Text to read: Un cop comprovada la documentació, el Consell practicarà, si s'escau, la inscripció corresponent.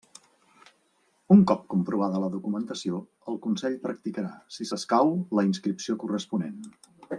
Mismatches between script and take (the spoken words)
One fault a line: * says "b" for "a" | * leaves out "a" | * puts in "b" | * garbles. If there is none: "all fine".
all fine